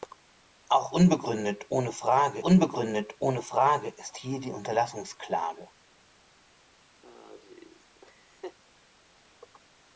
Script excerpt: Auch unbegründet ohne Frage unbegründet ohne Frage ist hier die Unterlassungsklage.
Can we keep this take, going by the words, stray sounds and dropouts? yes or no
no